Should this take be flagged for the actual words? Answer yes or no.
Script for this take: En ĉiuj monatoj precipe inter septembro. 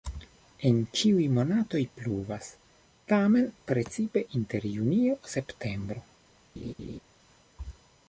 yes